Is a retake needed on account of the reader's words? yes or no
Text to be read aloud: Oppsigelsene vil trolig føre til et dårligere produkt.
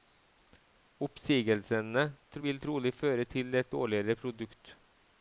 no